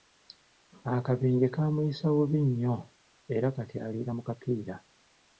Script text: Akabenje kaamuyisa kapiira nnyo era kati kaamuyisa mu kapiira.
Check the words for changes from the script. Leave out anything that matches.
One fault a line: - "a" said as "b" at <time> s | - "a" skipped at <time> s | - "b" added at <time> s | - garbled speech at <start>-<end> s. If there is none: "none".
- "kapiira" said as "bubi" at 2.1 s
- "kaamuyisa" said as "aliira" at 3.9 s